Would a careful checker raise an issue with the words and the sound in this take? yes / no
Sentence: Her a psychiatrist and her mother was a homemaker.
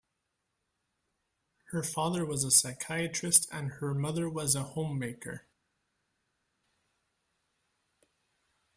yes